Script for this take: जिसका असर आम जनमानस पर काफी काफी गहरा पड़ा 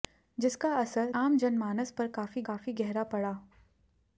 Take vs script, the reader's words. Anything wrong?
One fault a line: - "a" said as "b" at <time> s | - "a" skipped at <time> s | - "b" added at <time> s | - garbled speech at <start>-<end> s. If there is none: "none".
none